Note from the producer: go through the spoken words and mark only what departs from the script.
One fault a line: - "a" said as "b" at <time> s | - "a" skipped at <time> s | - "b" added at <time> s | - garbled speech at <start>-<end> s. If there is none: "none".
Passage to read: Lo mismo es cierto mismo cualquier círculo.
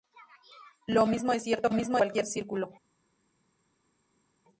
none